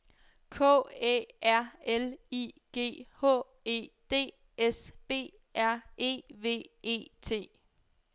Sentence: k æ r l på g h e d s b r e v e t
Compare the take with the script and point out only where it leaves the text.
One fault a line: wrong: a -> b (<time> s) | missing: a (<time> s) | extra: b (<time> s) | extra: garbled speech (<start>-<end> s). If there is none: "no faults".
wrong: på -> i (2.3 s)